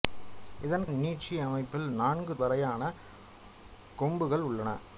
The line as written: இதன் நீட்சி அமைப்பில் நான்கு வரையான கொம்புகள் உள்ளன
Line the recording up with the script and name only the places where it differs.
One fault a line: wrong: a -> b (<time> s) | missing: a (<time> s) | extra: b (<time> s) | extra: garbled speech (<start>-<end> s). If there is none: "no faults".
no faults